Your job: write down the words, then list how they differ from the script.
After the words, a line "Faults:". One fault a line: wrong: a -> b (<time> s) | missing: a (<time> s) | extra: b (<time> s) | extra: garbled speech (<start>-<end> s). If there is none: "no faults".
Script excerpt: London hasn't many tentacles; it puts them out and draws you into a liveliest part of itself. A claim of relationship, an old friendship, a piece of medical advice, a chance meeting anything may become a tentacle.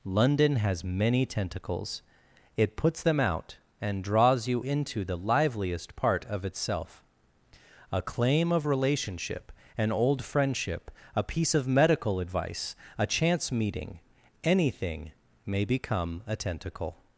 London has many tentacles; it puts them out and draws you into the liveliest part of itself. A claim of relationship, an old friendship, a piece of medical advice, a chance meeting anything may become a tentacle.
Faults:
wrong: hasn't -> has (0.6 s)
wrong: a -> the (5.0 s)